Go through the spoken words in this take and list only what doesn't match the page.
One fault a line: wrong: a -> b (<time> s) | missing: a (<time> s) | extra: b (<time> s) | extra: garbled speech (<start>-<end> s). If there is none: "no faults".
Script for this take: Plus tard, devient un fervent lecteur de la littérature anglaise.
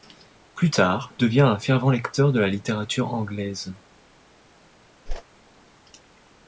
no faults